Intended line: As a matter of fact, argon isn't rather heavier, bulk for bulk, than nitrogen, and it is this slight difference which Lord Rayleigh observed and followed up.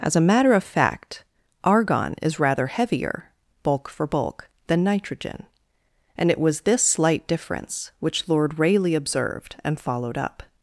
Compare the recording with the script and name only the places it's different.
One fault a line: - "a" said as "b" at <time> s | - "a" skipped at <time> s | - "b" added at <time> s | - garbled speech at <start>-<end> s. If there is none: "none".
- "isn't" said as "is" at 2.2 s
- "is" said as "was" at 6.4 s